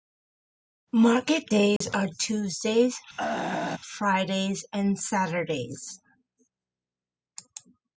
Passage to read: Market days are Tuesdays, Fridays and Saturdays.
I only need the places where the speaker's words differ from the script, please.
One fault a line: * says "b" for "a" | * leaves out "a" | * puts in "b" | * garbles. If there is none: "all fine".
all fine